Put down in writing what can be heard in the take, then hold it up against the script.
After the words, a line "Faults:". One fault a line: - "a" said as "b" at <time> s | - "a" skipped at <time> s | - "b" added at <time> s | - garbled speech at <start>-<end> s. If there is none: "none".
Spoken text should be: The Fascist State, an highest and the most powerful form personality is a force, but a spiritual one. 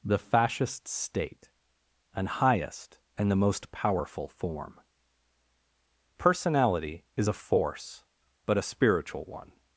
The Fascist State, an highest and the most powerful form personality is a force, but a spiritual one.
Faults:
none